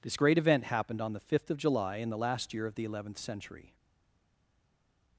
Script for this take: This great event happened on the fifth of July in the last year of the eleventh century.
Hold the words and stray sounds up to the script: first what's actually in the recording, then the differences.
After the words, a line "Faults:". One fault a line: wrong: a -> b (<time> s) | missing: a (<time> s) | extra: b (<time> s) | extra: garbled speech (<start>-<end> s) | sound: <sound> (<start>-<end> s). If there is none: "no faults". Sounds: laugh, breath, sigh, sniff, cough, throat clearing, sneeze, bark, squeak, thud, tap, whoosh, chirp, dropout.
This great event happened on the fifth of July in the last year of the eleventh century.
Faults:
no faults